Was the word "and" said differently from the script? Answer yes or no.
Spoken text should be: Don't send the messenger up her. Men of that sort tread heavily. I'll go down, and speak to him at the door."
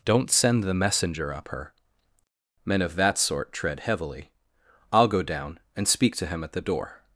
no